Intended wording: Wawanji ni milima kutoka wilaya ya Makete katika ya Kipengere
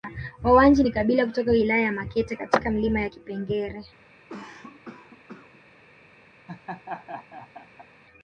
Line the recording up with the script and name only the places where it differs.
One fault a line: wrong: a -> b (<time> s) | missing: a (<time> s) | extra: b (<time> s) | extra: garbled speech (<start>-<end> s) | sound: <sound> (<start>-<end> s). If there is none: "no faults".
wrong: milima -> kabila (0.9 s)
extra: milima (2.7 s)
sound: cough (4.3-5.6 s)
sound: laugh (6.5-7.9 s)